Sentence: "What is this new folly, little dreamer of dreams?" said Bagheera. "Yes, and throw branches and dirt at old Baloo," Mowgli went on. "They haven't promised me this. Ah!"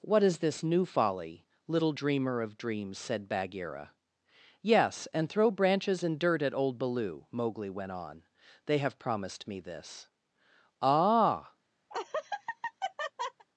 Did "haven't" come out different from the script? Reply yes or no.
yes